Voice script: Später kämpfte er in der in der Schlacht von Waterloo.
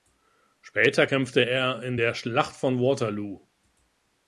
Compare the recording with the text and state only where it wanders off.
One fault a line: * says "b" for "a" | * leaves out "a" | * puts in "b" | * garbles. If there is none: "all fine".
* leaves out "in der"